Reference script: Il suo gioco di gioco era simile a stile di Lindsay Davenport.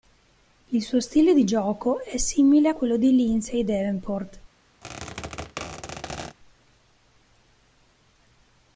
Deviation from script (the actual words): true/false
true